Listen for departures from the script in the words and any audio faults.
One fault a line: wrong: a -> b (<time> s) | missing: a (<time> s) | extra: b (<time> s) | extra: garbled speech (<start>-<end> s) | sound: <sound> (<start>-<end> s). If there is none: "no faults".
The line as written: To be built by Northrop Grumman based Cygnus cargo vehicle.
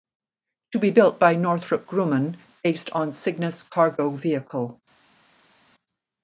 extra: on (2.9 s)